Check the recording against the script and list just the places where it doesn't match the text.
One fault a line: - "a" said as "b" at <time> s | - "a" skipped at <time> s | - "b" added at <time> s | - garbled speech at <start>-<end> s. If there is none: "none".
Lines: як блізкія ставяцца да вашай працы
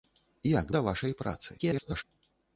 - "блізкія ставяцца" skipped at 0.7 s
- garbled speech at 1.6-2.0 s